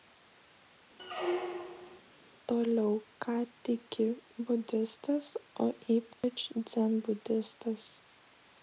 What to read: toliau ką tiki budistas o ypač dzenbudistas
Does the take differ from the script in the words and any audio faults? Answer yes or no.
yes